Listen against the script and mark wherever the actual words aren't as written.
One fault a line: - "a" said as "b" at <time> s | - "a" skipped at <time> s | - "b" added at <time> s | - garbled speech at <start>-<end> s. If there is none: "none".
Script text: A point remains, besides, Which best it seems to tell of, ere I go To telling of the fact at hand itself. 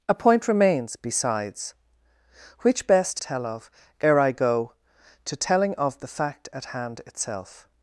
- "it seems to" skipped at 3.2 s